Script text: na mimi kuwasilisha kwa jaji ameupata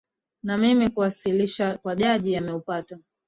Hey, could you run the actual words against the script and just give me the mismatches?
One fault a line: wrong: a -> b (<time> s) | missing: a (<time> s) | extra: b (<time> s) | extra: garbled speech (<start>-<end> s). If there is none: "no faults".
no faults